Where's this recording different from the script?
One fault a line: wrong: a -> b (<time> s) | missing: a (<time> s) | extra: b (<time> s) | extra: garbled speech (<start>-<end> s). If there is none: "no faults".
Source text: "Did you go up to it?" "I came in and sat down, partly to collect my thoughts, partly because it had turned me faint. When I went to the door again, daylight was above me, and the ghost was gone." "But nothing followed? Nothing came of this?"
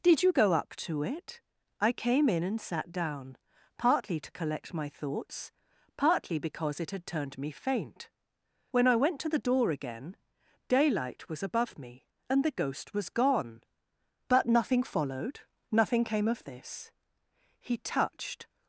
extra: He touched (17.6 s)